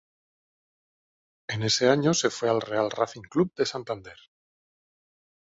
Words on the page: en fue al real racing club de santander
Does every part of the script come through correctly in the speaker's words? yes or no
no